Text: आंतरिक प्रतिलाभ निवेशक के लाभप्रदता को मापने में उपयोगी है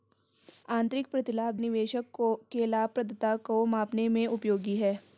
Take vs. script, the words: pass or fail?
pass